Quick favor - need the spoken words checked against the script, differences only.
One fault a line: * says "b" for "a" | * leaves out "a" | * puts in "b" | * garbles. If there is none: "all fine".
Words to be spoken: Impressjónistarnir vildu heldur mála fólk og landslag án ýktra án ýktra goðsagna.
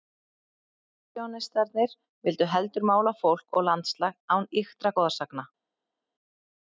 * leaves out "án ýktra"